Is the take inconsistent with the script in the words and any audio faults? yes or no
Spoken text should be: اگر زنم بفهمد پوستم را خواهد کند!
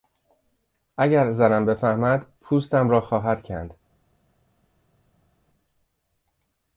no